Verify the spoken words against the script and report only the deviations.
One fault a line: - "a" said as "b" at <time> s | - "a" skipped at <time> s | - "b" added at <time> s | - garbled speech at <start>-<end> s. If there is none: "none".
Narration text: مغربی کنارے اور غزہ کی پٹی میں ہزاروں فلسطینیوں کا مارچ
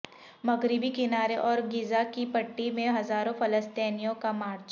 none